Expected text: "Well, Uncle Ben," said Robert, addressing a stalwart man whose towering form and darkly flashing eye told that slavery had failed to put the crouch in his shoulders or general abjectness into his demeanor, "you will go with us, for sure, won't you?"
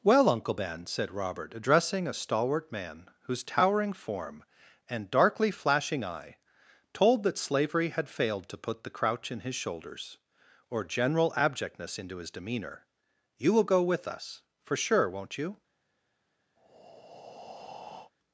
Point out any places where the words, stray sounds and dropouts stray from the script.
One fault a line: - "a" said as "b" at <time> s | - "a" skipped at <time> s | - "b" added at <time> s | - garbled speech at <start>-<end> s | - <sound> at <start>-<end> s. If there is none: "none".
- breath at 16.6-18.1 s